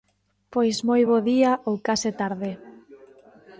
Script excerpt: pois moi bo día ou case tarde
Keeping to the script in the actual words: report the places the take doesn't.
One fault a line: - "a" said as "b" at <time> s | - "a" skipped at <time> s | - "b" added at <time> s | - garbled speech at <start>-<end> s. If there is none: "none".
none